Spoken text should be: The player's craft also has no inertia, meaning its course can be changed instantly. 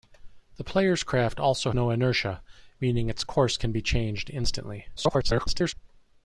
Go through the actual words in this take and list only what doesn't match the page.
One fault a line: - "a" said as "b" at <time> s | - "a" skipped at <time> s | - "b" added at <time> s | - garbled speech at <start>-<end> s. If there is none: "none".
- "has" skipped at 1.7 s
- garbled speech at 5.0-5.7 s